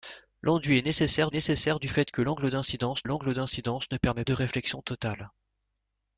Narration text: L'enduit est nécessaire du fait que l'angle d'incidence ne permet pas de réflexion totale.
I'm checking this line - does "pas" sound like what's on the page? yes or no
no